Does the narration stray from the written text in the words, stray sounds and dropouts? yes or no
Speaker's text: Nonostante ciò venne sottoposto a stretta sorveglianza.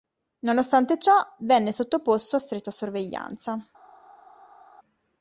no